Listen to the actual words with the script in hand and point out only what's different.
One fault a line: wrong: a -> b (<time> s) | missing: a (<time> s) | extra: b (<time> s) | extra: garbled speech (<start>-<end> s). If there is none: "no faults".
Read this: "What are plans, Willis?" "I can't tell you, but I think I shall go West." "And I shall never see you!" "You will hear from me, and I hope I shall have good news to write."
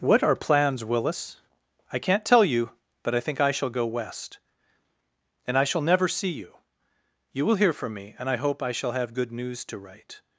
no faults